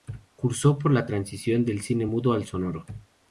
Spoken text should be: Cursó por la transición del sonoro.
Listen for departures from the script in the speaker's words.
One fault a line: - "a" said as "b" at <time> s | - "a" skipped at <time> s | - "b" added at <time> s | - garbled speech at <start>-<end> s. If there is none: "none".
- "cine mudo al" added at 1.8 s